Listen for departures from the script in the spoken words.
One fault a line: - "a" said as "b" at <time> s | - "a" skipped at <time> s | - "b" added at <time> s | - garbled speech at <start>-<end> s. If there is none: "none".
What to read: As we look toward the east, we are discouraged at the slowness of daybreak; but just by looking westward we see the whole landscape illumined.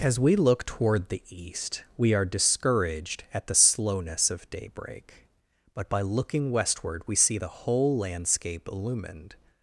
- "just" skipped at 5.9 s